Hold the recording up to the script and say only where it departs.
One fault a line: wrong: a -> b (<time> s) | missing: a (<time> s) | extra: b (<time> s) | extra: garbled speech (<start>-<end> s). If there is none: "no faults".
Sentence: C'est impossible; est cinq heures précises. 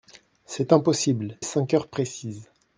no faults